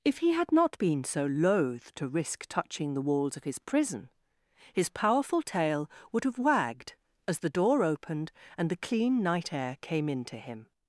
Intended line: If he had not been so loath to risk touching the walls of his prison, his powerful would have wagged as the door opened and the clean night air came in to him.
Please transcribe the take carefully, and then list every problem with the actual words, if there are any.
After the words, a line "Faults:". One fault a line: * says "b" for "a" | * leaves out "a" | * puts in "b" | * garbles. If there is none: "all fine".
If he had not been so loath to risk touching the walls of his prison, his powerful tail would have wagged as the door opened and the clean night air came in to him.
Faults:
* puts in "tail"